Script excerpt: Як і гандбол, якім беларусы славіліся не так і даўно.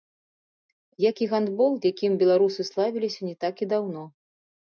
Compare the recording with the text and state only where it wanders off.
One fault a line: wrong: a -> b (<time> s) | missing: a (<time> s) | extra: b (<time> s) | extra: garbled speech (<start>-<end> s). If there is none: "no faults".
no faults